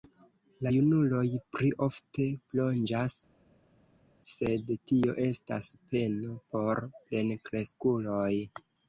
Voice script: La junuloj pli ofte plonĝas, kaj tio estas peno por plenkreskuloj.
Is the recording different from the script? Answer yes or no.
yes